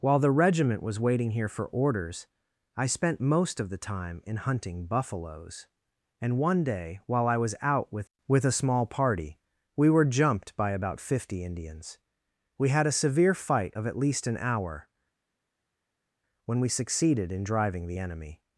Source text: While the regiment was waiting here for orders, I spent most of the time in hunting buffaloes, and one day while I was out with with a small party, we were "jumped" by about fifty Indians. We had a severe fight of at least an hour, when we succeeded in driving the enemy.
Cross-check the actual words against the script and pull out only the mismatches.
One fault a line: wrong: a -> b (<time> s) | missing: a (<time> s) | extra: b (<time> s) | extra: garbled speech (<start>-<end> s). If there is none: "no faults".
no faults